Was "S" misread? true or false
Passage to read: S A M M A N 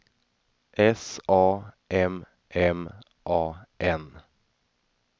false